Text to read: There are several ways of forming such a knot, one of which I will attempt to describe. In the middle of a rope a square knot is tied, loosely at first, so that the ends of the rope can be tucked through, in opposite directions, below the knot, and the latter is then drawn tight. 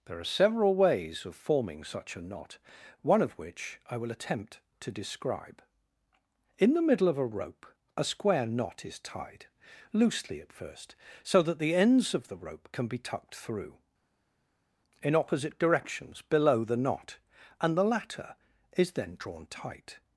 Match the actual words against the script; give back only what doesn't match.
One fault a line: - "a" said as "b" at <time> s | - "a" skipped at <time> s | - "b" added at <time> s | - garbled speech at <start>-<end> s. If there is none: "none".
none